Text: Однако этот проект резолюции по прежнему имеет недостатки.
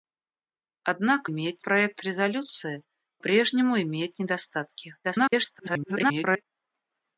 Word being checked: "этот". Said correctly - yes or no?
no